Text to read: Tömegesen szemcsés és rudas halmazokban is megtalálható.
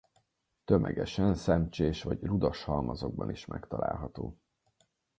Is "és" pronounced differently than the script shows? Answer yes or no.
yes